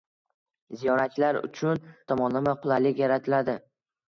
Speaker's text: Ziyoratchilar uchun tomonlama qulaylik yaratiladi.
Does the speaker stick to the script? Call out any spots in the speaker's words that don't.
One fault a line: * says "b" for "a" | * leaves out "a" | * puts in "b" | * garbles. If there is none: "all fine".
all fine